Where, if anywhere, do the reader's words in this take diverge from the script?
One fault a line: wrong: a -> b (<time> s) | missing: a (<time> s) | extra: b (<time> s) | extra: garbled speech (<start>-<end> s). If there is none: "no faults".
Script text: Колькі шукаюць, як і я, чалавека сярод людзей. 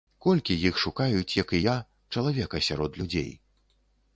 extra: іх (0.7 s)